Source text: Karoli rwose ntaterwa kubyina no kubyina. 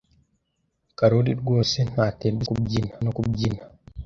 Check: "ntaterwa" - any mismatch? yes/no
no